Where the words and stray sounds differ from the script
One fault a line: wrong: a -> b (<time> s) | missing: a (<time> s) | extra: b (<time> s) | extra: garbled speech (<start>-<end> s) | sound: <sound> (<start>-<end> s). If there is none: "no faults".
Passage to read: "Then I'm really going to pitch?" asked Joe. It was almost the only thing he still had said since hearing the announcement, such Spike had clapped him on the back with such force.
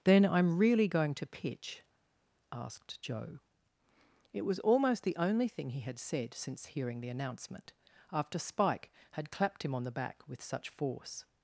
missing: still (5.8 s)
wrong: such -> after (8.1 s)